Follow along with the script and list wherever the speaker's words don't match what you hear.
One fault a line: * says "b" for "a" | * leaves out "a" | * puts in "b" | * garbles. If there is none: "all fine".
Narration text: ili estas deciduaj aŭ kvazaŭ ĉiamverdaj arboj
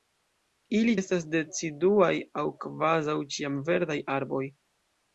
all fine